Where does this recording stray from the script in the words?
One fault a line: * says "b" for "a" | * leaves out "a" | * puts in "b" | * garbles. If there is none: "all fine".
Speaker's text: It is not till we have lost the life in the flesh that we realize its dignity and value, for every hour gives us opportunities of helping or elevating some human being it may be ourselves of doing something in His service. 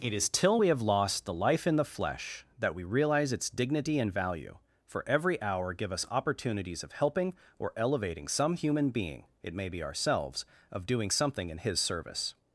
* leaves out "not"
* says "give" for "gives"